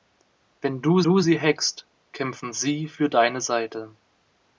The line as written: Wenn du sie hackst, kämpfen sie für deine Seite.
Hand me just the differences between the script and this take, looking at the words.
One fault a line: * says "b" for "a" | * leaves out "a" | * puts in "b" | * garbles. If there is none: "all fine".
* puts in "du"